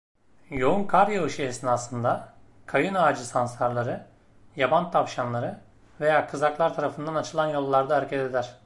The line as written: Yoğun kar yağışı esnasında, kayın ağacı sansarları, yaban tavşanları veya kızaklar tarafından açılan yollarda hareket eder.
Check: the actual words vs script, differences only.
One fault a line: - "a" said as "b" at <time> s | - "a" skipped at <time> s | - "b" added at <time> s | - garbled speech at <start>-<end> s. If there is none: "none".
none